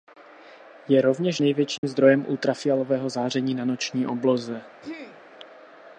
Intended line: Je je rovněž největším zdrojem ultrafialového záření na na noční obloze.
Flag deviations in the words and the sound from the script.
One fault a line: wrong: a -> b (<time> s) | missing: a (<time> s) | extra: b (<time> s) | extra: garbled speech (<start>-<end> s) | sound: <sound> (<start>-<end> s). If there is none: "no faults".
missing: je (1.0 s)
sound: dropout (1.8-1.8 s)
missing: na (3.6 s)
sound: throat clearing (4.8-5.2 s)